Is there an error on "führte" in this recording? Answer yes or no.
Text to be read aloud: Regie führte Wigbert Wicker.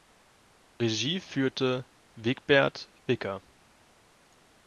no